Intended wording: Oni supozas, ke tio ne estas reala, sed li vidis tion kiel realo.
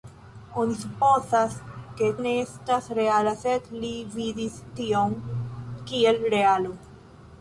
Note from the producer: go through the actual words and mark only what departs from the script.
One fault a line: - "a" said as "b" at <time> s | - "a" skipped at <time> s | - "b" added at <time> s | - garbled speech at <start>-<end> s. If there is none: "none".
- "tio" skipped at 2.1 s